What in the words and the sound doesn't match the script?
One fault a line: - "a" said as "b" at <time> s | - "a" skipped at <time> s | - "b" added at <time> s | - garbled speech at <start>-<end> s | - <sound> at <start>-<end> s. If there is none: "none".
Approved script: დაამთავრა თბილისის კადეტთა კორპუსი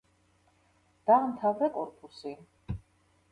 - "თბილისის კადეტთა" skipped at 1.7 s